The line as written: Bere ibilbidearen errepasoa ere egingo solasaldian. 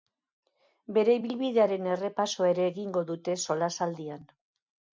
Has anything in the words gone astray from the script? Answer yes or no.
yes